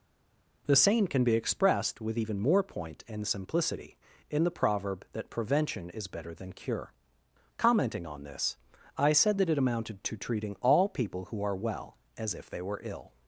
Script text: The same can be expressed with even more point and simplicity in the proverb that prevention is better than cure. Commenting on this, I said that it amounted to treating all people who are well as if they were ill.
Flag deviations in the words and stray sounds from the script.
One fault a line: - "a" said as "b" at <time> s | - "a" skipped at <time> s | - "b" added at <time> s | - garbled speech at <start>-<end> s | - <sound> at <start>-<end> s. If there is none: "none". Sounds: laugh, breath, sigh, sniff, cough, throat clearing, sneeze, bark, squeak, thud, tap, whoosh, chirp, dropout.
none